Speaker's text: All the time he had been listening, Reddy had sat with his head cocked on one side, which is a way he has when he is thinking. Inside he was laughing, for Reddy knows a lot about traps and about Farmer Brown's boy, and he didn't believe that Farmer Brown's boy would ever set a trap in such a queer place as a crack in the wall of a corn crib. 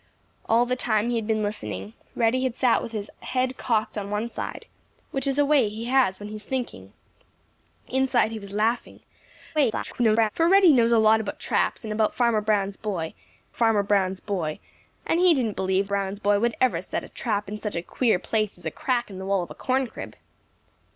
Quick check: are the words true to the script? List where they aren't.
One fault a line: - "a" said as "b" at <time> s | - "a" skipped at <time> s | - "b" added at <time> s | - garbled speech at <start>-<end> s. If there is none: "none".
- garbled speech at 9.5-10.3 s
- "Farmer Brown's boy" added at 13.6 s
- "that Farmer" skipped at 15.9 s